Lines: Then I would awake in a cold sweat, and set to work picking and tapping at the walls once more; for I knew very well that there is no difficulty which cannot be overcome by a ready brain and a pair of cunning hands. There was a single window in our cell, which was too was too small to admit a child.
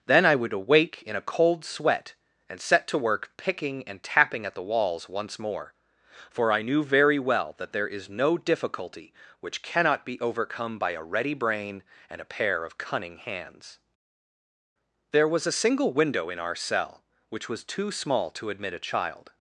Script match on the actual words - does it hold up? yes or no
no